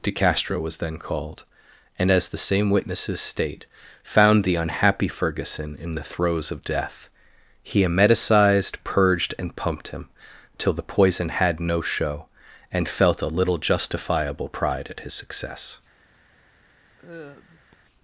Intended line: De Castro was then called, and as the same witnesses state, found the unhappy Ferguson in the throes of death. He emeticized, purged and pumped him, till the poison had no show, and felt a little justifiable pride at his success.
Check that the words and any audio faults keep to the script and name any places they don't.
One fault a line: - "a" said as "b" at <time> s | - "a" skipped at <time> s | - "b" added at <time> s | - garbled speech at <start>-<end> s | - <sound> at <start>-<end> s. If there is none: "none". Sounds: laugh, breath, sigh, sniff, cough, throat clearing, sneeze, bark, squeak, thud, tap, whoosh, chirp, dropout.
- sigh at 17.0-17.7 s